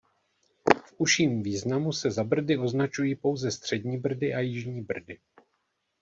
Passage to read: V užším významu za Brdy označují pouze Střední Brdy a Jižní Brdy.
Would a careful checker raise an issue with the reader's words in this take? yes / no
yes